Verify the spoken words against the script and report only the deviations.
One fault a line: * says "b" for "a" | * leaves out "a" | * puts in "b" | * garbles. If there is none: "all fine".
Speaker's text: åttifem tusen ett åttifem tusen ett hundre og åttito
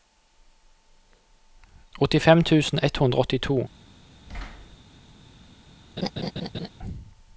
* leaves out "åttifem tusen ett"